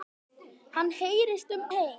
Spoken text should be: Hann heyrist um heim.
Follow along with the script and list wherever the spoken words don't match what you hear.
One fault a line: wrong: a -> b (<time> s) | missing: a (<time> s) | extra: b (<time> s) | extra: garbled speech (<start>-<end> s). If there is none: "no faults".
no faults